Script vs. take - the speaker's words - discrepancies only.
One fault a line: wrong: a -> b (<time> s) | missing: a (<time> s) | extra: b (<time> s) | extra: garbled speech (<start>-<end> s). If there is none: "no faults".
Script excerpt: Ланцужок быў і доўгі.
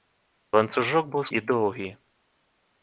no faults